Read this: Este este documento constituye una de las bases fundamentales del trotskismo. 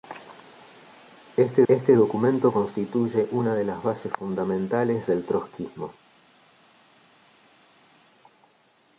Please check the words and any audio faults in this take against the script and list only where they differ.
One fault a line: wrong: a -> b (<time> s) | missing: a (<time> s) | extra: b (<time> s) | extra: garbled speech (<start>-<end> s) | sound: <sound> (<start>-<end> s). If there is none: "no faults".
no faults